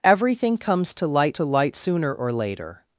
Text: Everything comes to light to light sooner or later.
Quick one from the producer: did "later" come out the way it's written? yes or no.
yes